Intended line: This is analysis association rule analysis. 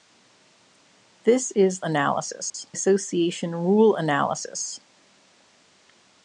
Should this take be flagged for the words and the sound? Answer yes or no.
yes